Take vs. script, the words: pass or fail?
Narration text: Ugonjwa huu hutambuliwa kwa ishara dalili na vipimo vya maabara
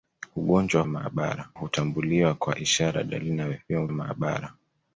fail